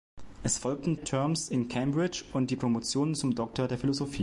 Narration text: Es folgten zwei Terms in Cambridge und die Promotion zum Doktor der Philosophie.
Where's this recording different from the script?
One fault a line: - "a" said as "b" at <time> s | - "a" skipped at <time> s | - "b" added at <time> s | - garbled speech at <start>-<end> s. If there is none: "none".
- "zwei" skipped at 1.0 s